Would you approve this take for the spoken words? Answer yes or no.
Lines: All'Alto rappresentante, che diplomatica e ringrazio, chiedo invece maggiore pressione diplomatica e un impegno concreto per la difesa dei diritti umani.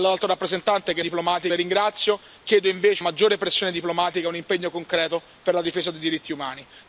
yes